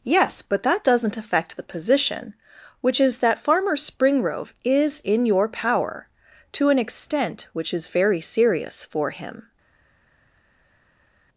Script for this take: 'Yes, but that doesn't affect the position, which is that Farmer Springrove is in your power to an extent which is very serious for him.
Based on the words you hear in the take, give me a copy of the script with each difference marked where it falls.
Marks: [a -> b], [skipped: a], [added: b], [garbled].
'Yes, but that doesn't affect the position, which is that Farmer Springrove is in your power to an extent which is very serious for him.